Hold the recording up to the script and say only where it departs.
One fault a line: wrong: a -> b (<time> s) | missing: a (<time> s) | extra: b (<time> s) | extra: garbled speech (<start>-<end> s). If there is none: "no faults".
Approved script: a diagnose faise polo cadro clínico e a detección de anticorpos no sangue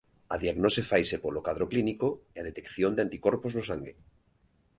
no faults